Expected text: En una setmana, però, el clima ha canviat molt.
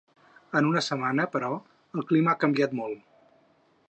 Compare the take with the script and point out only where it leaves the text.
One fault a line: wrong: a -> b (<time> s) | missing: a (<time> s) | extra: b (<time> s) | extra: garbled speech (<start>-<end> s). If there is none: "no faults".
no faults